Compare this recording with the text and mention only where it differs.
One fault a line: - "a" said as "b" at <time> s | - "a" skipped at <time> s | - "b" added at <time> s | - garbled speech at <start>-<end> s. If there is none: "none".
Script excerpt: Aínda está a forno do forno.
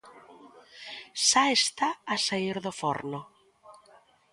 - "Aínda" said as "Xa" at 1.3 s
- "forno" said as "saír" at 2.3 s